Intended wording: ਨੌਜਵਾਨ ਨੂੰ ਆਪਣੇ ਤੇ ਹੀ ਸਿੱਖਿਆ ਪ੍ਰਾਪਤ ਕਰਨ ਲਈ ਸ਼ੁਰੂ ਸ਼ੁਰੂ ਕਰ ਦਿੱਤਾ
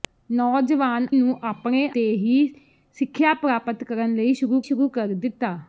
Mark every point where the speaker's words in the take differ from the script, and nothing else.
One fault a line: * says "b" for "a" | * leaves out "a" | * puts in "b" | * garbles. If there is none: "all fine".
all fine